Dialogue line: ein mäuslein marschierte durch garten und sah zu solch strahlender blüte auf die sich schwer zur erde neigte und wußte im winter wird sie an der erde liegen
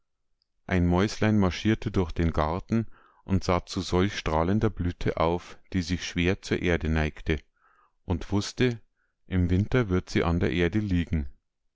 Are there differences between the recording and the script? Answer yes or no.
yes